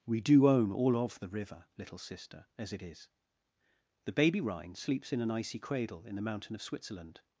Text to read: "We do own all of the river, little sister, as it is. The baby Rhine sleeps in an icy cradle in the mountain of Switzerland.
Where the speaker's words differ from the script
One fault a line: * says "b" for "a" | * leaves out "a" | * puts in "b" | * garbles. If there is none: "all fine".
all fine